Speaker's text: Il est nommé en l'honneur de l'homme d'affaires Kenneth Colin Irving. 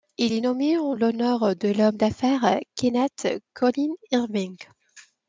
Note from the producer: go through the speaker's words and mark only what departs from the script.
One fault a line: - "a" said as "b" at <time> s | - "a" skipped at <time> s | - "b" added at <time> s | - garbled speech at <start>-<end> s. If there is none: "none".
none